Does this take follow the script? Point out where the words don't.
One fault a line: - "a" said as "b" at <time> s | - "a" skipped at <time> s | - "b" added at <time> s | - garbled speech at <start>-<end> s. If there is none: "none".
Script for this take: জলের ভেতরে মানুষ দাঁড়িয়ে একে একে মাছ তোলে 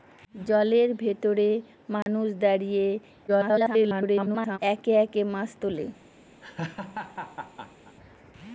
- garbled speech at 3.3-4.6 s